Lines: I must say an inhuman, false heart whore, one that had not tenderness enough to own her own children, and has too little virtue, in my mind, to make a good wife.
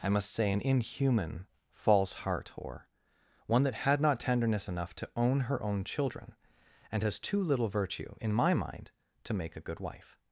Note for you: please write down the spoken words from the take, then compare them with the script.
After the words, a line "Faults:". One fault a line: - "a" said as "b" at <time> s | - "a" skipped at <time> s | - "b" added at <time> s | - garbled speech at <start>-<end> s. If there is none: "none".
I must say an inhuman, false heart whore, one that had not tenderness enough to own her own children, and has too little virtue, in my mind, to make a good wife.
Faults:
none